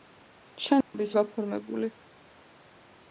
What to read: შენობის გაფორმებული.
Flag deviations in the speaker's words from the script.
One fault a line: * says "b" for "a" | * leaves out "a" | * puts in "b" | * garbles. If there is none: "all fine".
all fine